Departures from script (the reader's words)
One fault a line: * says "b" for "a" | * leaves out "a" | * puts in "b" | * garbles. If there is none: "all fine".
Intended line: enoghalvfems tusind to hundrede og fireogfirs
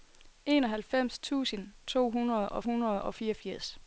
* puts in "hundrede og"